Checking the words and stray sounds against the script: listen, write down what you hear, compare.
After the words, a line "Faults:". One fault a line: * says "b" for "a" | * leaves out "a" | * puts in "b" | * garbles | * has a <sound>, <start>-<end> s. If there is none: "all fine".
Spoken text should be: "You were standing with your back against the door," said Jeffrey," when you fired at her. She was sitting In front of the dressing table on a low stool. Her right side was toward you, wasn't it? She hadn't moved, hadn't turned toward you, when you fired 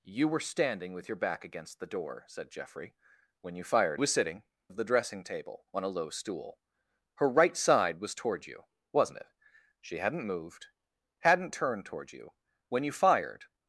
"You were standing with your back against the door," said Jeffrey," when you fired was sitting Of the dressing table on a low stool. Her right side was toward you, wasn't it? She hadn't moved, hadn't turned toward you, when you fired
Faults:
* leaves out "at her She"
* leaves out "In front"